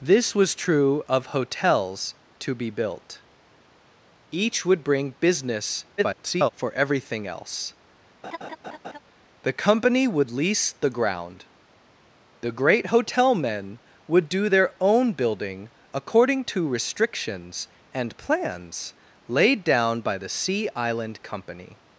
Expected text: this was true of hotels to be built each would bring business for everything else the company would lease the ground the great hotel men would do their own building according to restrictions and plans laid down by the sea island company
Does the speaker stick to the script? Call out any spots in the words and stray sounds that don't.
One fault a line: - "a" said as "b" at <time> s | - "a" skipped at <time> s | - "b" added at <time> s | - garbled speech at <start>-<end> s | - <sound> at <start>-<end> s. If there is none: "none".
- garbled speech at 6.0-6.5 s
- laugh at 8.2-9.0 s